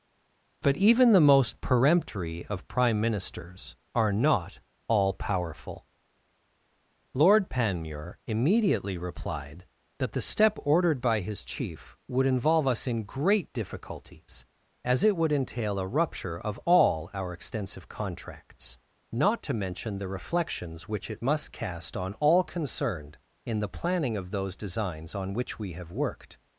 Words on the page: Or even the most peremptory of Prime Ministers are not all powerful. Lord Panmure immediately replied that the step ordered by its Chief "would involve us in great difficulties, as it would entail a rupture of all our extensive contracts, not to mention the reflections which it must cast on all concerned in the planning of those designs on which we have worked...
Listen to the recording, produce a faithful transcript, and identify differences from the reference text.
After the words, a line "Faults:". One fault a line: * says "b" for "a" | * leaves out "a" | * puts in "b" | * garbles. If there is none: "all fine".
But even the most peremptory of Prime Ministers are not all powerful. Lord Panmure immediately replied that the step ordered by his Chief "would involve us in great difficulties, as it would entail a rupture of all our extensive contracts, not to mention the reflections which it must cast on all concerned in the planning of those designs on which we have worked...
Faults:
* says "But" for "Or"
* says "his" for "its"